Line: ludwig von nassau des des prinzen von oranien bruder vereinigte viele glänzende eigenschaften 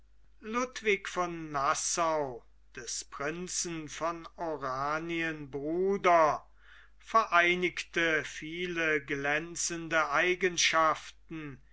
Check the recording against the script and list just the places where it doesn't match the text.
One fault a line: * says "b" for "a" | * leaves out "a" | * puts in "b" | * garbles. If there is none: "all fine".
* leaves out "des"